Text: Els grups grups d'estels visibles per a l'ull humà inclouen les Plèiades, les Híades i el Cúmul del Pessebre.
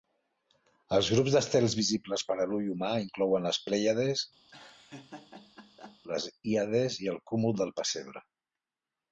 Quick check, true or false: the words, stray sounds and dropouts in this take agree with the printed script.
false